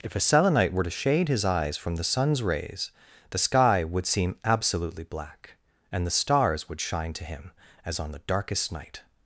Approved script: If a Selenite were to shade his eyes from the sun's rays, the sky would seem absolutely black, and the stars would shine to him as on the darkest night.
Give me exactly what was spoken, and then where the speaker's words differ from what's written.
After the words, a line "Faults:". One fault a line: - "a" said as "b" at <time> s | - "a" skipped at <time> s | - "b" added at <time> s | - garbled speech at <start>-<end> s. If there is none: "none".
If a Selenite were to shade his eyes from the sun's rays, the sky would seem absolutely black, and the stars would shine to him as on the darkest night.
Faults:
none